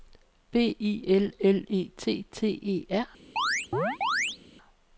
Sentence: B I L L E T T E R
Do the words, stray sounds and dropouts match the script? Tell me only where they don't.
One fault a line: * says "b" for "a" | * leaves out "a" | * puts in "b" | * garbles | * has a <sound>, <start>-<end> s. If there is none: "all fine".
* has a chirp, 3.4-4.4 s